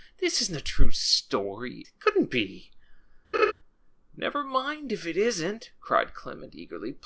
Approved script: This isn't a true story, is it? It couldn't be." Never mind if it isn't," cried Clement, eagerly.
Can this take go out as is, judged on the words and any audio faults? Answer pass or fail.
fail